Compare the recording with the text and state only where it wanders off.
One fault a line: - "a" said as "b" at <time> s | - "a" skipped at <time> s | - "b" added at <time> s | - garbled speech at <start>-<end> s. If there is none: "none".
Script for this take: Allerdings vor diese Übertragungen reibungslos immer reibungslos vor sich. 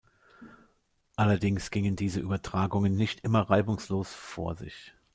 - "vor" said as "gingen" at 1.7 s
- "reibungslos" said as "nicht" at 3.0 s